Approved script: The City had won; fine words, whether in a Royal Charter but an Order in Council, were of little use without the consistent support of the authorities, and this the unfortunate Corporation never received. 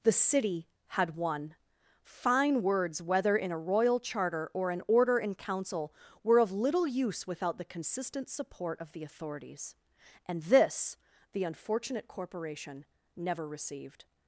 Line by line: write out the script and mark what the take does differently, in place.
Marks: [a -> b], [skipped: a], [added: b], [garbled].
The City had won; fine words, whether in a Royal Charter [but -> or] an Order in Council, were of little use without the consistent support of the authorities, and this the unfortunate Corporation never received.